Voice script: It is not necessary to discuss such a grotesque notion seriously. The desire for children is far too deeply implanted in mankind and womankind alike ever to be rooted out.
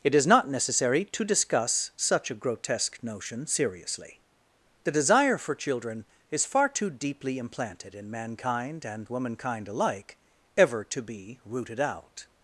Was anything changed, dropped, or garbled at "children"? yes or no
no